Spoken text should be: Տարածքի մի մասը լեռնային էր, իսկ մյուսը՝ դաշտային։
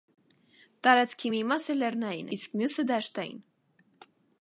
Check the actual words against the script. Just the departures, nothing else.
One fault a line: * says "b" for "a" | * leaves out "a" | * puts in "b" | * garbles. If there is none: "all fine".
* leaves out "էր"